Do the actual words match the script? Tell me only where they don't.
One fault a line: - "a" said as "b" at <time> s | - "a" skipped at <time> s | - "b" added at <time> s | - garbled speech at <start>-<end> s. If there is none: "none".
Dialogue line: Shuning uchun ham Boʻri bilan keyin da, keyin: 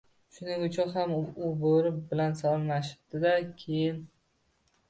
- "u" added at 1.2 s
- "keyin" said as "salomlashibdi" at 2.4 s